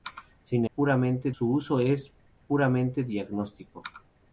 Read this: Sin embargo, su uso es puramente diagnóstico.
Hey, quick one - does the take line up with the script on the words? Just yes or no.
no